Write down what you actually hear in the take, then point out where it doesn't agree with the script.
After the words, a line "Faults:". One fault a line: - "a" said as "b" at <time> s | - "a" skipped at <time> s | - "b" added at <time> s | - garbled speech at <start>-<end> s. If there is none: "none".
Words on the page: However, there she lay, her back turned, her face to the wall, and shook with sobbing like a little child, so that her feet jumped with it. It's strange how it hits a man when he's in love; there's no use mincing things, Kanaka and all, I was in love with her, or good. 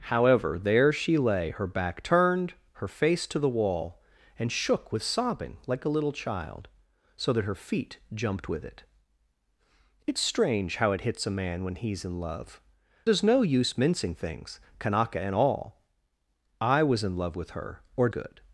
However, there she lay, her back turned, her face to the wall, and shook with sobbing like a little child, so that her feet jumped with it. It's strange how it hits a man when he's in love; there's no use mincing things, Kanaka and all, I was in love with her, or good.
Faults:
none